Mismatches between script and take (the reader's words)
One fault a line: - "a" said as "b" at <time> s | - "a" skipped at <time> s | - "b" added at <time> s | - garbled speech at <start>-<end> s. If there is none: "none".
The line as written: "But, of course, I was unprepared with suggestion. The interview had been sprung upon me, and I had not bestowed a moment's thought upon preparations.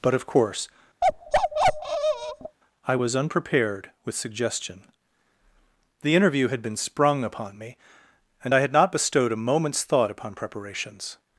none